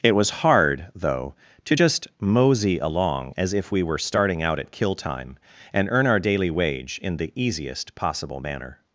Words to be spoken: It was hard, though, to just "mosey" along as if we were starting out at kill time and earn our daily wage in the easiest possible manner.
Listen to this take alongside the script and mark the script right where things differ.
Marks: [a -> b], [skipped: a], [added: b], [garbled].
It was hard, though, to just "mosey" along as if we were starting out at kill time and earn our daily wage in the easiest possible manner.